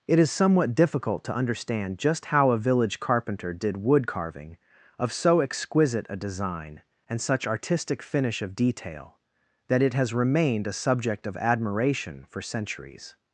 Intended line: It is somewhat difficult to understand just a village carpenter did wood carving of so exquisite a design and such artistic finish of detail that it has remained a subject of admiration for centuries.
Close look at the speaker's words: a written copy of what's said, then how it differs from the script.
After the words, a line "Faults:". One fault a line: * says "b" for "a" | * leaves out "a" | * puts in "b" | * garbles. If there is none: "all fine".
It is somewhat difficult to understand just how a village carpenter did wood carving of so exquisite a design and such artistic finish of detail that it has remained a subject of admiration for centuries.
Faults:
* puts in "how"